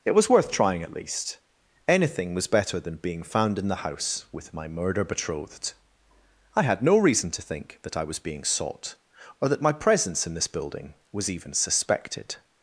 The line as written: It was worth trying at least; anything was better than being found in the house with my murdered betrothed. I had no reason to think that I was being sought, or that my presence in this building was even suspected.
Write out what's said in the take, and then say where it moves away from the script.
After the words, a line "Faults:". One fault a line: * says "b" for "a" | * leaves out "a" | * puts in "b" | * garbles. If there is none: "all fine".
It was worth trying at least; anything was better than being found in the house with my murder betrothed. I had no reason to think that I was being sought, or that my presence in this building was even suspected.
Faults:
* says "murder" for "murdered"